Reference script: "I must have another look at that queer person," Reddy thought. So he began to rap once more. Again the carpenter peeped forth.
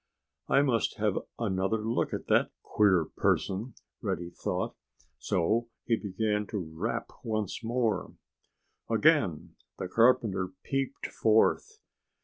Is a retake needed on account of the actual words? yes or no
no